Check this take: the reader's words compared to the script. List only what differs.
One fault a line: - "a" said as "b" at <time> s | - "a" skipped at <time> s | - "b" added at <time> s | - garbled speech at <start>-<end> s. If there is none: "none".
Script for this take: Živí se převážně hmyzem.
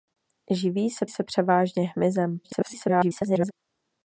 - "se" added at 1.1 s
- garbled speech at 2.4-3.5 s